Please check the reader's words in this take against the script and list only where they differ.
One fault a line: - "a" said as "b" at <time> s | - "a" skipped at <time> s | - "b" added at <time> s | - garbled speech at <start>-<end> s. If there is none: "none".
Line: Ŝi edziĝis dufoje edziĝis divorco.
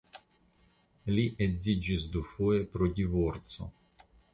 - "Ŝi" said as "Li" at 1.1 s
- "edziĝis" said as "pro" at 2.8 s